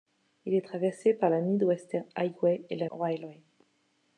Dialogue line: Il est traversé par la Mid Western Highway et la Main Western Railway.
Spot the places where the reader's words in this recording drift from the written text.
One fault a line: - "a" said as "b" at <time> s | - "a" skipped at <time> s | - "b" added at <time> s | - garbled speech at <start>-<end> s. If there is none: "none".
- "Main Western" skipped at 2.9 s